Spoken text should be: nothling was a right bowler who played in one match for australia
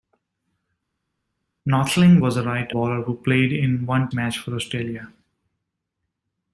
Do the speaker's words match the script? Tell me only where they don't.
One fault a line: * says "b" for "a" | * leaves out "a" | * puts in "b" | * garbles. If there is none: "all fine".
all fine